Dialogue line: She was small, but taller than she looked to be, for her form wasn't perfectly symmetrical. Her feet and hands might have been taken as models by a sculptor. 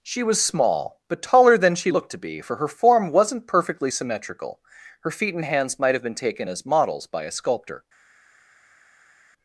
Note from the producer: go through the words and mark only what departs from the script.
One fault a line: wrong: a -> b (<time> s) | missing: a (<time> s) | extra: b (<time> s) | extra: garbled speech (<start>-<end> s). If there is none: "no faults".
no faults